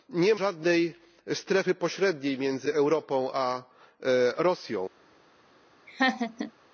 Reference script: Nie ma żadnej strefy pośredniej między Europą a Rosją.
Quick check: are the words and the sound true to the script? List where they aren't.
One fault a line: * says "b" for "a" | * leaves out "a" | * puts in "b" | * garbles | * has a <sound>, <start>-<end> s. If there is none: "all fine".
* leaves out "ma"
* has a laugh, 5.9-6.5 s